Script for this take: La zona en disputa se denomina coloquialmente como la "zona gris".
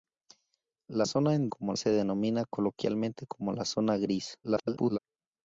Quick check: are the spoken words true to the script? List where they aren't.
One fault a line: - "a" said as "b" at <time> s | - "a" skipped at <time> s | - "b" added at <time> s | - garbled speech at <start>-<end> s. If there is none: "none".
- "disputa" said as "como" at 1.5 s
- garbled speech at 4.4-5.0 s